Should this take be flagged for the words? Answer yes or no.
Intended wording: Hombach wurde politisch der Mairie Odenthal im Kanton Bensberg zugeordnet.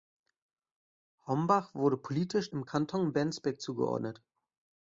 yes